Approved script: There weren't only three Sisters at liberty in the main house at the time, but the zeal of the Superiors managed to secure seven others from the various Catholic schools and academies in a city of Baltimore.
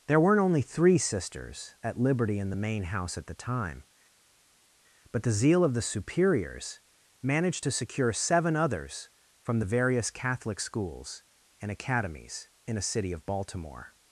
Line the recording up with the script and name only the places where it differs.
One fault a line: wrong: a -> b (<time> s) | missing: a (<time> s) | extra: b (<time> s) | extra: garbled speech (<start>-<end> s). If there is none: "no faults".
no faults